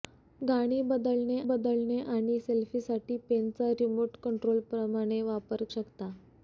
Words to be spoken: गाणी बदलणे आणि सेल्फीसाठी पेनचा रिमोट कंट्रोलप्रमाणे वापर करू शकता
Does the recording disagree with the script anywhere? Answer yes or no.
yes